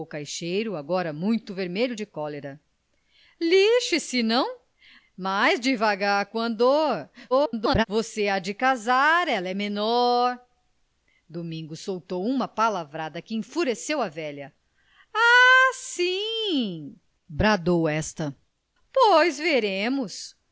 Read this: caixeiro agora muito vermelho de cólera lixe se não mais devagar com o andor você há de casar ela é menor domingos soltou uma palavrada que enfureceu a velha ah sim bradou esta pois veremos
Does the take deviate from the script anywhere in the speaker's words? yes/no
yes